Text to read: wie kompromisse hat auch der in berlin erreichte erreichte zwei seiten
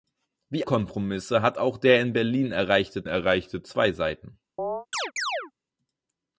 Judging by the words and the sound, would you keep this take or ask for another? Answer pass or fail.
fail